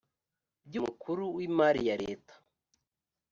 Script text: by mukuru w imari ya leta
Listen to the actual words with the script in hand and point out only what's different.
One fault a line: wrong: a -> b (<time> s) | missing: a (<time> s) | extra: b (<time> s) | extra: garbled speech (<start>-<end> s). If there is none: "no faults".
no faults